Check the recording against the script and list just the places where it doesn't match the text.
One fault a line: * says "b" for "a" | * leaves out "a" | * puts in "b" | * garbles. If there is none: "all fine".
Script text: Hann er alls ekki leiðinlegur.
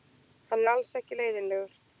all fine